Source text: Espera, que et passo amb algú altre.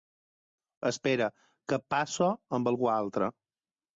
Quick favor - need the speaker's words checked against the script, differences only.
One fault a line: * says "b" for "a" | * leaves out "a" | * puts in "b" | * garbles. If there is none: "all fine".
all fine